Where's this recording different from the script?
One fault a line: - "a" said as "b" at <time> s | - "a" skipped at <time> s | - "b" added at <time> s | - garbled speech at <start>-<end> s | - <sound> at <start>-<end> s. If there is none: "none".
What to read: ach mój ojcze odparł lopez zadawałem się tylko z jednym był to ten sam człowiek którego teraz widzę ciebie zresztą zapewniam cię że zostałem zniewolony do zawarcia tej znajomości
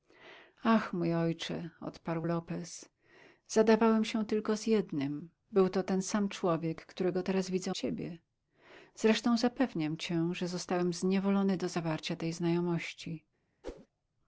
- whoosh at 13.6-13.9 s